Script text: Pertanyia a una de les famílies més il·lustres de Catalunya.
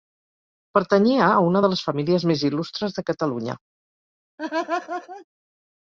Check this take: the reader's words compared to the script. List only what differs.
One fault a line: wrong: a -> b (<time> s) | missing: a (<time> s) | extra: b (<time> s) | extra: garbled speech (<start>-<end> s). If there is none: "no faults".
no faults